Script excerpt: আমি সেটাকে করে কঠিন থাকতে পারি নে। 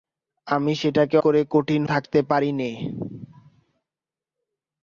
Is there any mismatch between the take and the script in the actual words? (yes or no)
no